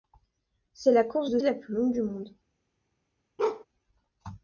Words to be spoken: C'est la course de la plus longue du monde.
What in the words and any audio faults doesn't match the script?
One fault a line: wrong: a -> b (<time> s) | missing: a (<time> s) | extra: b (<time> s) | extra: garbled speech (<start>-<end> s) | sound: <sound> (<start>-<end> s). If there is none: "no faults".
sound: bark (3.4-3.6 s)